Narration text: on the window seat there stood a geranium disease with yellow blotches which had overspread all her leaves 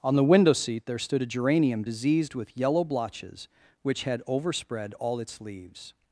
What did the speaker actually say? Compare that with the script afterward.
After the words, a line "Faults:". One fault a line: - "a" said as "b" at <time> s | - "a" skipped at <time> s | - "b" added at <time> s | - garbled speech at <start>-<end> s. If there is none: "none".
on the window seat there stood a geranium diseased with yellow blotches which had overspread all its leaves
Faults:
- "disease" said as "diseased" at 1.8 s
- "her" said as "its" at 5.2 s